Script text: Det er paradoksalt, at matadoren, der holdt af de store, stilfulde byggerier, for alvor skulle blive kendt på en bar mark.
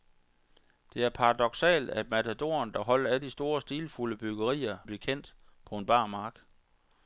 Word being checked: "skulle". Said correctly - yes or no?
no